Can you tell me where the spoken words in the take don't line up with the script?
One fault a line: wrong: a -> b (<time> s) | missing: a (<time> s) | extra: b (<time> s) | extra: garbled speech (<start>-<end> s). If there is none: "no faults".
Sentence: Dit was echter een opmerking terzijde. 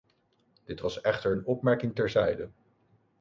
no faults